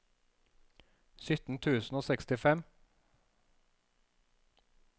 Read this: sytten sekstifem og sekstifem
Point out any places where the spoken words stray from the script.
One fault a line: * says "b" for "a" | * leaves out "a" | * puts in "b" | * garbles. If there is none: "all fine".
* says "tusen" for "sekstifem"